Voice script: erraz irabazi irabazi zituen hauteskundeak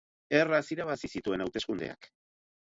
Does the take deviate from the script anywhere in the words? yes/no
yes